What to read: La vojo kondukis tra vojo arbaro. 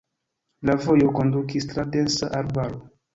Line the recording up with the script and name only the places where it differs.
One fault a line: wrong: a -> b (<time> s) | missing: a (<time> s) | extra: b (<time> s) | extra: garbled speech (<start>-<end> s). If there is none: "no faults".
wrong: vojo -> densa (2.0 s)